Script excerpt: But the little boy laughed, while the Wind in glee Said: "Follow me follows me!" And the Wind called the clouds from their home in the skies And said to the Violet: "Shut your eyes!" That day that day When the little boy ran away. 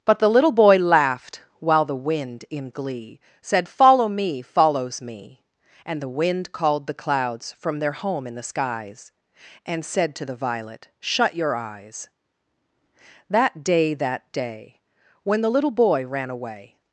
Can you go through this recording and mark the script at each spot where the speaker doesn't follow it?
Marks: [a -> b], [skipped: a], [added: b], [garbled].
But the little boy laughed, while the Wind in glee Said: "Follow me follows me!" And the Wind called the clouds from their home in the skies And said to the Violet: "Shut your eyes!" That day that day When the little boy ran away.